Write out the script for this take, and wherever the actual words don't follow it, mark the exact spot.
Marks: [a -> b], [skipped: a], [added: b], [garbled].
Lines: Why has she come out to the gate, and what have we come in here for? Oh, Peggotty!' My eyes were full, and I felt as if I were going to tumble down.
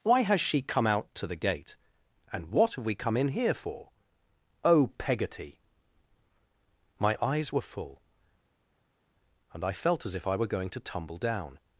Why has she come out to the gate, and what have we come in here for? Oh, Peggotty!' My eyes were full, and I felt as if I were going to tumble down.